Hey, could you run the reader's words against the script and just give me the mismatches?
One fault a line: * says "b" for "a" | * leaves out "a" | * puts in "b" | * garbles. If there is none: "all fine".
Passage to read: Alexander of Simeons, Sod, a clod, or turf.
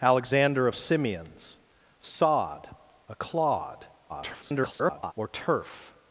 * garbles